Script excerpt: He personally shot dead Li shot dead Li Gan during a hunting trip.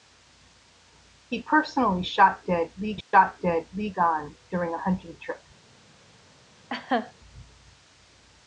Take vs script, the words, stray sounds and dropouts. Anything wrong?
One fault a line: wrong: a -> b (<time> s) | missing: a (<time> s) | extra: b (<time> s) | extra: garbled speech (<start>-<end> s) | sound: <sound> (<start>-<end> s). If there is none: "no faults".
sound: dropout (3.0-3.1 s)
sound: laugh (6.7-7.1 s)